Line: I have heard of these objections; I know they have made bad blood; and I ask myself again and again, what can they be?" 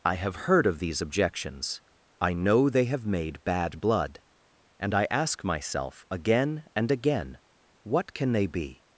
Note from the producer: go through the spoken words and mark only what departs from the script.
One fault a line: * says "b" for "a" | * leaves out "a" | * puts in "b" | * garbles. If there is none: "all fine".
all fine